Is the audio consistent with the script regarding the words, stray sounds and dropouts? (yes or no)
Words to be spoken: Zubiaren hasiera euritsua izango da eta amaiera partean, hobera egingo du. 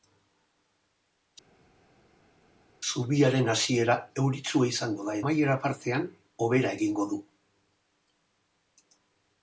no